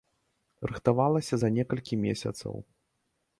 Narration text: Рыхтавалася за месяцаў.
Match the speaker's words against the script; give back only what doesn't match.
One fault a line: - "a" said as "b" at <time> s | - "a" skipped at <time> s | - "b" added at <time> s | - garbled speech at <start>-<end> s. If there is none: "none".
- "некалькі" added at 1.6 s